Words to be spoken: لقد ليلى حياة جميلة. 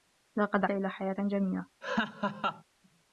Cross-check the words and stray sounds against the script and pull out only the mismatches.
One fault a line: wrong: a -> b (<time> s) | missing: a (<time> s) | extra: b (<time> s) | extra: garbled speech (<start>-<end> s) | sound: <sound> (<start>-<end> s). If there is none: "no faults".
sound: laugh (1.8-2.6 s)